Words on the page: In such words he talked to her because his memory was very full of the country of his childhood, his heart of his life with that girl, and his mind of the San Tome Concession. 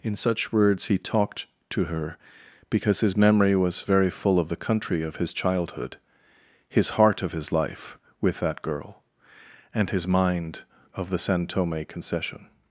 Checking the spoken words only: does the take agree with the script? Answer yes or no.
yes